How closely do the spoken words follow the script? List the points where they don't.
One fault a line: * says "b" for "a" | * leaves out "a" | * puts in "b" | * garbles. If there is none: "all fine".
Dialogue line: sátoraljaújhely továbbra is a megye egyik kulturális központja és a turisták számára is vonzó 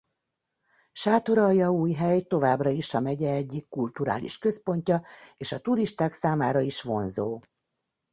all fine